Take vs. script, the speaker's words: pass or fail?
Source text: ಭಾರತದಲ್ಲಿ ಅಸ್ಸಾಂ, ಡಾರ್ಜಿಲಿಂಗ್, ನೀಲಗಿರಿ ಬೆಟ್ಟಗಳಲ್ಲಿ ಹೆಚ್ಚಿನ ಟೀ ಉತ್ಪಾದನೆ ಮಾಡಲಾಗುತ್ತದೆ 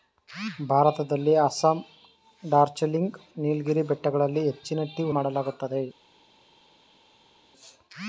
fail